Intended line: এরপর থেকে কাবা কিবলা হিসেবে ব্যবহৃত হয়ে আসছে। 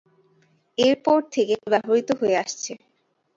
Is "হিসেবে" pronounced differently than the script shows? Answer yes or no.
yes